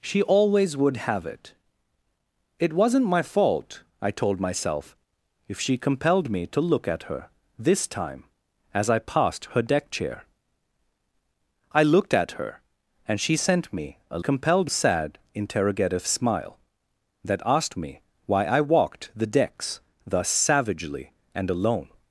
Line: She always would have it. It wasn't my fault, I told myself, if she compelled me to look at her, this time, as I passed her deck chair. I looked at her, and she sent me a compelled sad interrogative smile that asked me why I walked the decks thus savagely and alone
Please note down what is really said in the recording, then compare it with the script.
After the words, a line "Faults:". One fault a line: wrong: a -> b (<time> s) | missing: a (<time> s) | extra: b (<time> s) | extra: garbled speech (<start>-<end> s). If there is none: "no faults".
She always would have it. It wasn't my fault, I told myself, if she compelled me to look at her, this time, as I passed her deck chair. I looked at her, and she sent me a compelled sad interrogative smile that asked me why I walked the decks thus savagely and alone
Faults:
no faults